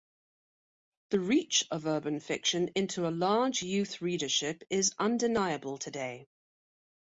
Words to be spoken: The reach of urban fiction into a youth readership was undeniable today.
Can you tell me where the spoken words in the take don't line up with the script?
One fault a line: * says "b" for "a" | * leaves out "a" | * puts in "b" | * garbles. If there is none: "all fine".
* puts in "large"
* says "is" for "was"